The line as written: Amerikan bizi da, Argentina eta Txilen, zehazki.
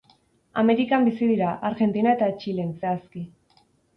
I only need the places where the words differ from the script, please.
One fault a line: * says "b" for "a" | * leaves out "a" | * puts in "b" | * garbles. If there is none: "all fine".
* says "dira" for "da"